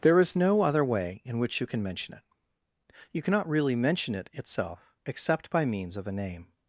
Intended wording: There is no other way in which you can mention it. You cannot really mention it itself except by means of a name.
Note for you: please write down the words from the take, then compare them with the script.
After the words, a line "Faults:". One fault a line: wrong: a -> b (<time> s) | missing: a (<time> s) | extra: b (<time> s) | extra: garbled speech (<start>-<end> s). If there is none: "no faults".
There is no other way in which you can mention it. You cannot really mention it itself except by means of a name.
Faults:
no faults